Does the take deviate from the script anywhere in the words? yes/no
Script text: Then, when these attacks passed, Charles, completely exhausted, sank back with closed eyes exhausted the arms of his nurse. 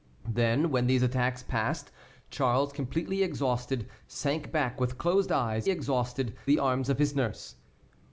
no